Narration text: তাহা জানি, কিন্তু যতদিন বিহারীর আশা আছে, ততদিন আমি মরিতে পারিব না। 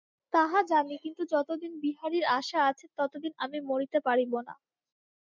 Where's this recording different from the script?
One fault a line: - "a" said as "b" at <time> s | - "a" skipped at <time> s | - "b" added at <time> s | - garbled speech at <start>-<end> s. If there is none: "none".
none